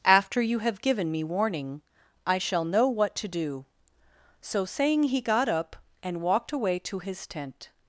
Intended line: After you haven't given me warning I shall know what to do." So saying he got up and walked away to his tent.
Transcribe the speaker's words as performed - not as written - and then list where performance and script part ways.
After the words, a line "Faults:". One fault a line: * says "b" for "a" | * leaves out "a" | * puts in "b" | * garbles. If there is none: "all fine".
After you have given me warning I shall know what to do." So saying he got up and walked away to his tent.
Faults:
* says "have" for "haven't"